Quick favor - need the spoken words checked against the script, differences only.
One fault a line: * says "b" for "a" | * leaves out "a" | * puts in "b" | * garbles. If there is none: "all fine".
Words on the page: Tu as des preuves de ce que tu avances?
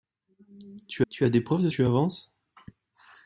* puts in "tu"
* leaves out "ce que"